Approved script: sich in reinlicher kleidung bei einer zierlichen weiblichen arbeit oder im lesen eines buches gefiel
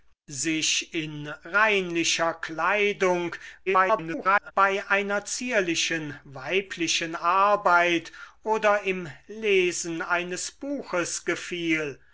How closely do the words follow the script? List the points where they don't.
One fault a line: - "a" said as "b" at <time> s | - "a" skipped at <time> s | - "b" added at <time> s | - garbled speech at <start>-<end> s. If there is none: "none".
- garbled speech at 3.7-4.5 s